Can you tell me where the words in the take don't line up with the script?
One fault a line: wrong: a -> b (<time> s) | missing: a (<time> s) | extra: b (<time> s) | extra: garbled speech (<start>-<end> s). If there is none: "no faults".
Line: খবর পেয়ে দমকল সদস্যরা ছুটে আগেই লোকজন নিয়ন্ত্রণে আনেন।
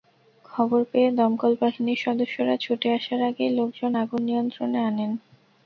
extra: বাহিনীর (1.6 s)
extra: আসার (3.0 s)
extra: আগুন (4.0 s)